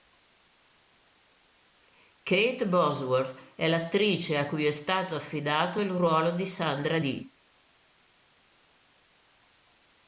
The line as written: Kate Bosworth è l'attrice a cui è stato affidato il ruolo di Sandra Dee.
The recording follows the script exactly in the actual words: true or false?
true